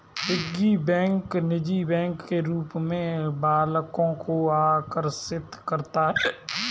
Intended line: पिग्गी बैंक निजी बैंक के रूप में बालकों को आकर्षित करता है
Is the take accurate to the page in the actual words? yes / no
yes